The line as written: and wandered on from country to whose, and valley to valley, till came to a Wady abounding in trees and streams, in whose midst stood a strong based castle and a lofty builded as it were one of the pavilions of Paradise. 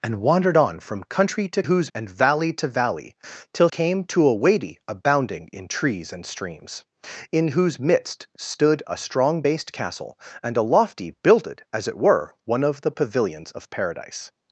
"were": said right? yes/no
yes